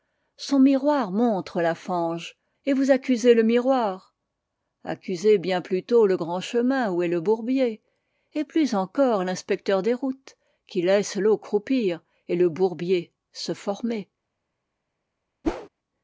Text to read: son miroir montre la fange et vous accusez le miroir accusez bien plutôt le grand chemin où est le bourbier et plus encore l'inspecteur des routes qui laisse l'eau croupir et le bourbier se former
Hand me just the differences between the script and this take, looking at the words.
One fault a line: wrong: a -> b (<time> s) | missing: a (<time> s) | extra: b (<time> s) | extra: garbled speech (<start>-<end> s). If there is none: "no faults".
no faults